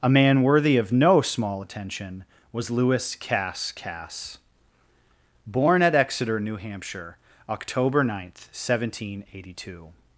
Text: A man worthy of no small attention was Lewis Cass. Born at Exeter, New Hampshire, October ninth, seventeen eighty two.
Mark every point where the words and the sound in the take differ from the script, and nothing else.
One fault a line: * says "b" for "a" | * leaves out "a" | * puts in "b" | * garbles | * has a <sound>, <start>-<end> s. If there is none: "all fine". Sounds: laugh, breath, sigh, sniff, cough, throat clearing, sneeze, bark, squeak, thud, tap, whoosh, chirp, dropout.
* puts in "Cass"